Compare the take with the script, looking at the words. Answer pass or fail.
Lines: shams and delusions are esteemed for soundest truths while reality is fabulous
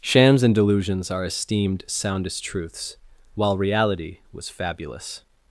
fail